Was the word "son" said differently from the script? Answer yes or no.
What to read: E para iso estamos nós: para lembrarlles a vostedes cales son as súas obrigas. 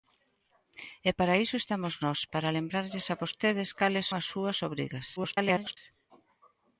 yes